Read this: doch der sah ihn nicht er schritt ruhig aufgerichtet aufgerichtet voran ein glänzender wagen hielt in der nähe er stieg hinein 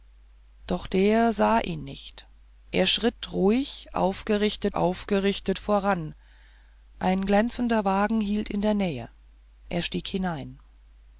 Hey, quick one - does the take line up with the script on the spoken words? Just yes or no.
yes